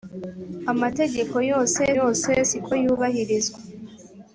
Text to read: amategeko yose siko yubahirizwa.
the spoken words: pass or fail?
fail